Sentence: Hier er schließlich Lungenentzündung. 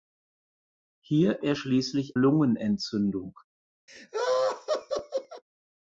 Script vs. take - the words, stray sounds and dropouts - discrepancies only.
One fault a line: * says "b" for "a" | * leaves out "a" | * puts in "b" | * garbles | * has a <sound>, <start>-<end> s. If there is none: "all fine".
* has a laugh, 3.9-5.4 s